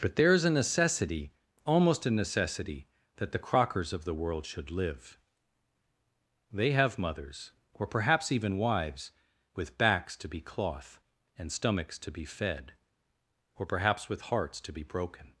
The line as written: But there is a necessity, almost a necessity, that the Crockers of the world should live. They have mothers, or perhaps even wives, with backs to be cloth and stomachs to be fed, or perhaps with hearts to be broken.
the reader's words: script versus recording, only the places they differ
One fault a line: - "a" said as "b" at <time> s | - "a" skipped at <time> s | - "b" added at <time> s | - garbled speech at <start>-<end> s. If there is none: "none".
none